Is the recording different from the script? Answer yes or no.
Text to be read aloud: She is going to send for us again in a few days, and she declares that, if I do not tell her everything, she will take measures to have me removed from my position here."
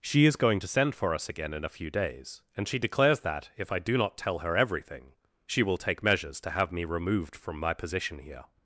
no